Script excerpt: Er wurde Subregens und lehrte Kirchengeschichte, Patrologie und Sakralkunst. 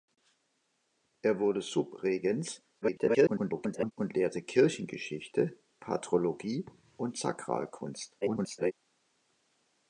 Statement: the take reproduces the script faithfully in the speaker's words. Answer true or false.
false